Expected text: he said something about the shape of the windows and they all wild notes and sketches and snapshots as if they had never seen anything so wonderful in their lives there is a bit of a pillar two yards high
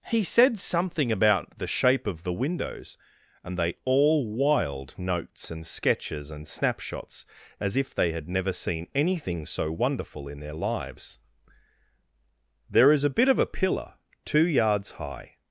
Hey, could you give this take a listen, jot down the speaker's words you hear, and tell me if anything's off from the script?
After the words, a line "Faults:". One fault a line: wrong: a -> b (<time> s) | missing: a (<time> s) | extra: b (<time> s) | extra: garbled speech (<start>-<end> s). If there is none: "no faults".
he said something about the shape of the windows and they all wild notes and sketches and snapshots as if they had never seen anything so wonderful in their lives there is a bit of a pillar two yards high
Faults:
no faults